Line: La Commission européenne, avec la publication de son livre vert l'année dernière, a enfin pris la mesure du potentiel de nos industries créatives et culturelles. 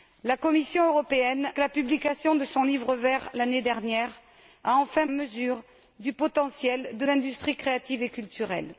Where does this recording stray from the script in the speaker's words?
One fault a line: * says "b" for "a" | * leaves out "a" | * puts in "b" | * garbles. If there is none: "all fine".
* leaves out "avec"
* leaves out "pris la"
* leaves out "nos"